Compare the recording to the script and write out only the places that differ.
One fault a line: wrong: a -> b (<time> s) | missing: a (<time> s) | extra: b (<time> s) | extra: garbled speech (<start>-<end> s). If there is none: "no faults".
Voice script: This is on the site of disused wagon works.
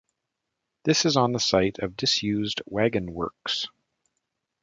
no faults